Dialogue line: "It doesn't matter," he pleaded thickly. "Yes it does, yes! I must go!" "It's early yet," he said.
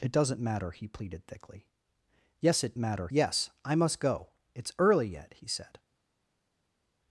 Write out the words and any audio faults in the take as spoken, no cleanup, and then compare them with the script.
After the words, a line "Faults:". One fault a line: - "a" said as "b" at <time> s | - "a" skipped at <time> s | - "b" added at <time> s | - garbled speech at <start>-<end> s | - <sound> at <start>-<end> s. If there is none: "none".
"It doesn't matter," he pleaded thickly. "Yes it matter, yes! I must go!" "It's early yet," he said.
Faults:
- "does" said as "matter" at 2.8 s